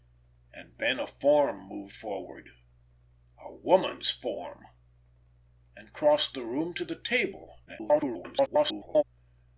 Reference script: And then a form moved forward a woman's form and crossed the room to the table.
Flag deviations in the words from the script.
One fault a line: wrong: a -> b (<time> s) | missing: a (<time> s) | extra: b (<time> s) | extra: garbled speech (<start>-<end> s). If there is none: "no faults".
extra: garbled speech (7.7-9.0 s)